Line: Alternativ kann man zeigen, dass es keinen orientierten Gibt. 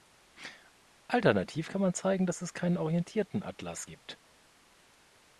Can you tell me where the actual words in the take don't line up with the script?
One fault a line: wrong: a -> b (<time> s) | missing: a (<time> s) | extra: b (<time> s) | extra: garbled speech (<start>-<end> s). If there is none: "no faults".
extra: Atlas (3.4 s)